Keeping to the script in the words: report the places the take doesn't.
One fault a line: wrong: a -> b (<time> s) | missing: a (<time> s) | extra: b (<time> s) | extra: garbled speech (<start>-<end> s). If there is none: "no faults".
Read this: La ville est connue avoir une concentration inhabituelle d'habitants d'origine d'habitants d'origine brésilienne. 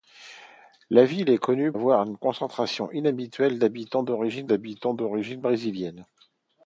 no faults